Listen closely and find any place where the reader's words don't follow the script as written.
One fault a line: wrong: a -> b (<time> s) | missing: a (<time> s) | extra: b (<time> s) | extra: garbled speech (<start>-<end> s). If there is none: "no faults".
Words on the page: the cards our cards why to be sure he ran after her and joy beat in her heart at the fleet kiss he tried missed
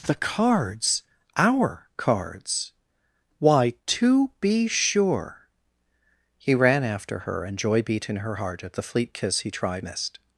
no faults